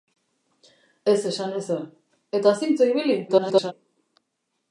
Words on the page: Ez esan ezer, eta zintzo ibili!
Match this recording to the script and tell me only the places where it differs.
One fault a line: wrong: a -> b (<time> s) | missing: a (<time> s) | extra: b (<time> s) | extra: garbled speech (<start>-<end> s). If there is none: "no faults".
extra: garbled speech (3.3-3.7 s)